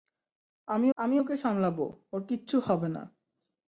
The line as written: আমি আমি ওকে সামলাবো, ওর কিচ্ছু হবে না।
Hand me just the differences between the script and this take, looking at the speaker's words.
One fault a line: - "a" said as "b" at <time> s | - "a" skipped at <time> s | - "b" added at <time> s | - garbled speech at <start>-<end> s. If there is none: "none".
none